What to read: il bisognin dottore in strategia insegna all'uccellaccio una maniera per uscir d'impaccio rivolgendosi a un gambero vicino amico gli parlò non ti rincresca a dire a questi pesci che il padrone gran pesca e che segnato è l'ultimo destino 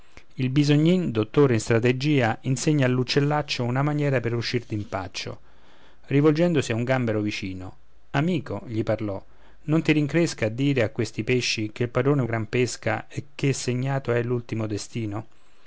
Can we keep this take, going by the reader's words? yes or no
yes